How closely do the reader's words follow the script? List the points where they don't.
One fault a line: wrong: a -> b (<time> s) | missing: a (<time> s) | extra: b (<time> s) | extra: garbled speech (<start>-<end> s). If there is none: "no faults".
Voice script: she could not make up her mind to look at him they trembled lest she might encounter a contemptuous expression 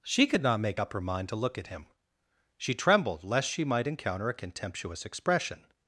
wrong: they -> she (2.6 s)